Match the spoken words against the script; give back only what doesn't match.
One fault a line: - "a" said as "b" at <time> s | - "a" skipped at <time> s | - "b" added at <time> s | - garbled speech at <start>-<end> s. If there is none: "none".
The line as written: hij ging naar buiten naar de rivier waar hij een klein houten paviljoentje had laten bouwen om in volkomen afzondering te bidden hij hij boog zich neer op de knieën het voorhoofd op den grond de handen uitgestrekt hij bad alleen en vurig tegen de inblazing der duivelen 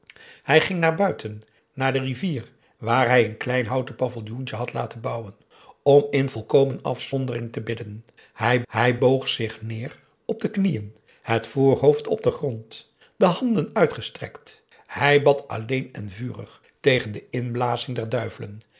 none